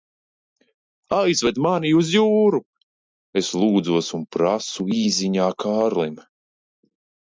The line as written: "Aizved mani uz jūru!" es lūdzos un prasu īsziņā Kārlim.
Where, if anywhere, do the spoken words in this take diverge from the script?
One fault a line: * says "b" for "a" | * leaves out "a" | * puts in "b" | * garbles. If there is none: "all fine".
all fine